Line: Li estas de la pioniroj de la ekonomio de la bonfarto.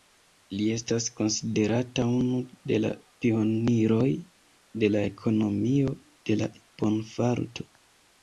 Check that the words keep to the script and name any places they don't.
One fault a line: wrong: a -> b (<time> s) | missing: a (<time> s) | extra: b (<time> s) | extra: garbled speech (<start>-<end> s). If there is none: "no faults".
extra: konsiderata unu (1.2 s)